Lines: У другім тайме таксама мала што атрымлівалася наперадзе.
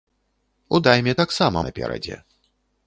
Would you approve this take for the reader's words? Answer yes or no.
no